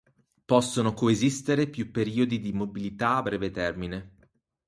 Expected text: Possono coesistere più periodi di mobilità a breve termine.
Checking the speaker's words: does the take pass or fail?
pass